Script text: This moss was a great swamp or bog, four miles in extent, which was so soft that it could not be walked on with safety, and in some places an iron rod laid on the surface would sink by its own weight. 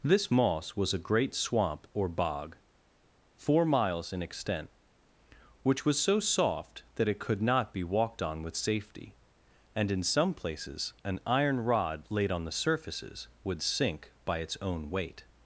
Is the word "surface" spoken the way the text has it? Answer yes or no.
no